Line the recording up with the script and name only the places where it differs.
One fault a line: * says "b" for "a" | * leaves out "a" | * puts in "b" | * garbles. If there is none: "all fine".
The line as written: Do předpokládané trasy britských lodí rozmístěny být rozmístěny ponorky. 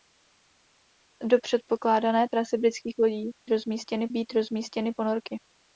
all fine